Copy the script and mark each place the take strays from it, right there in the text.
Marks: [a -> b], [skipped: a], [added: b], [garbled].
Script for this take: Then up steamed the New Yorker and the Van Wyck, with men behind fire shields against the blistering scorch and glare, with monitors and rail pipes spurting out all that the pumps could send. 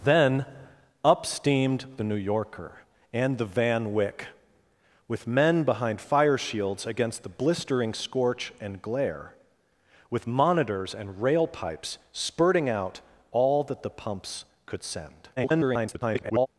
Then up steamed the New Yorker and the Van Wyck, with men behind fire shields against the blistering scorch and glare, with monitors and rail pipes spurting out all that the pumps could send. [garbled]